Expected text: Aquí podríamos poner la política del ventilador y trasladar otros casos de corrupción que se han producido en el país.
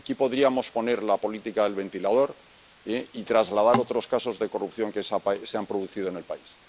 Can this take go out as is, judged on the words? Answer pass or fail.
pass